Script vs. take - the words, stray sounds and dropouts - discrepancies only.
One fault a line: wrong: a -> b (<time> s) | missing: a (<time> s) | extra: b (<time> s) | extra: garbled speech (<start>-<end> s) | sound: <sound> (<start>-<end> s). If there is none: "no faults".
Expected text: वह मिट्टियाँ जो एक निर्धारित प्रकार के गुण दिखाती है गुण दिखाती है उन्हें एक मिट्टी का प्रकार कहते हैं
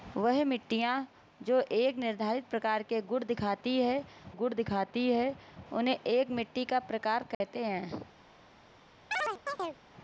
sound: dropout (7.3-7.4 s)
sound: chirp (9.1-9.8 s)